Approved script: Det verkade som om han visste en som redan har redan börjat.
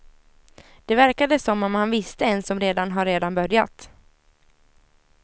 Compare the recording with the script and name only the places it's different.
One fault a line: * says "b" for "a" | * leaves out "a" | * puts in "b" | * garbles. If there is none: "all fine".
all fine